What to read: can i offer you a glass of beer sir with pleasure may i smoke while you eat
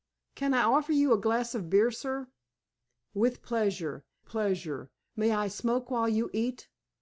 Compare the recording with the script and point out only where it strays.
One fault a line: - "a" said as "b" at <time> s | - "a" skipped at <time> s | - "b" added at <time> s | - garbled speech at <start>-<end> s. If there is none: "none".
- "pleasure" added at 4.3 s